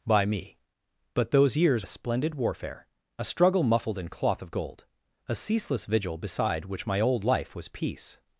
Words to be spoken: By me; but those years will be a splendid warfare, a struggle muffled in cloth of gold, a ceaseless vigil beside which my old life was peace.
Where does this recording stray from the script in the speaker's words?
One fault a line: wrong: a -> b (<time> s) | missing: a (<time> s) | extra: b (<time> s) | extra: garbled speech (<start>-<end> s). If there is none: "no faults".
missing: will be (1.9 s)